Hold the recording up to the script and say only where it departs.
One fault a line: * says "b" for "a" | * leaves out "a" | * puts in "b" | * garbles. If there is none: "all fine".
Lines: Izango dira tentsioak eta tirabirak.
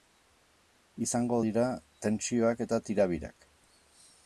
all fine